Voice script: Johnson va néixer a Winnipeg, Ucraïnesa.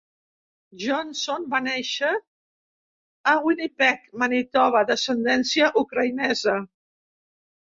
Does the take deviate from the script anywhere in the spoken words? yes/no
yes